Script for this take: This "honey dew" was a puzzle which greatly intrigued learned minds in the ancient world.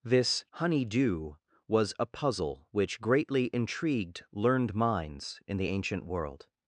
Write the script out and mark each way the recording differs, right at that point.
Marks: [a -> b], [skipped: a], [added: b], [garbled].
This "honey dew" was a puzzle which greatly intrigued learned minds in the ancient world.